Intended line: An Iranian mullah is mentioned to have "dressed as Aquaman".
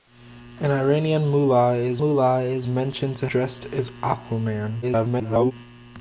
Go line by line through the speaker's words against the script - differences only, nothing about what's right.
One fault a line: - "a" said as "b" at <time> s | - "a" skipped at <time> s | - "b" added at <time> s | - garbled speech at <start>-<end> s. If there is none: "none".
- "mullah is" added at 2.0 s
- "have" skipped at 3.3 s
- garbled speech at 4.8-5.5 s